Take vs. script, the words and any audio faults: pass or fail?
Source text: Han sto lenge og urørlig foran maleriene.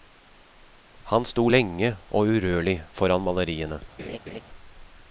fail